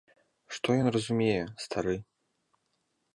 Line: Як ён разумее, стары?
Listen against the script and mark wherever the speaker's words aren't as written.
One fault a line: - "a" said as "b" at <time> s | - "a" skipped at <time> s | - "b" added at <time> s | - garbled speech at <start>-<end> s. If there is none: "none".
- "Як" said as "Што" at 0.6 s